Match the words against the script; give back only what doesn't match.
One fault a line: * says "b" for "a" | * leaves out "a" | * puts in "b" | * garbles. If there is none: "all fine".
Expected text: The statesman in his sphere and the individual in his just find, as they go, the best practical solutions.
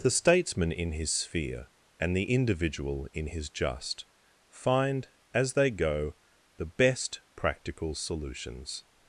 all fine